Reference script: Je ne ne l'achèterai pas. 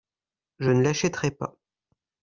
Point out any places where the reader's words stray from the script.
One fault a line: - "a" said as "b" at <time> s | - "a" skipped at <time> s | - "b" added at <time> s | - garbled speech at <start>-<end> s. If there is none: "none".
- "ne" skipped at 0.8 s